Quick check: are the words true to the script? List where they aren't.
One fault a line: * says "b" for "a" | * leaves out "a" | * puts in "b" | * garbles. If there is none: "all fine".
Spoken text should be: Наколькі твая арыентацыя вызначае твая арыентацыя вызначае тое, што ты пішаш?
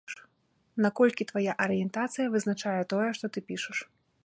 * leaves out "твая арыентацыя вызначае"